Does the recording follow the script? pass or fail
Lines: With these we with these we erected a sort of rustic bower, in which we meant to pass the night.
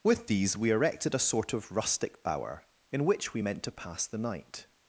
fail